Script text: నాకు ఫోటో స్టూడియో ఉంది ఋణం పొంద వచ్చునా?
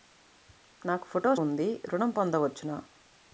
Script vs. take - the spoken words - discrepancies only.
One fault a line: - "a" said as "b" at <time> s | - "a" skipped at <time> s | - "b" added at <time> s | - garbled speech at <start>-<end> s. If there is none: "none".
- "స్టూడియో" skipped at 1.4 s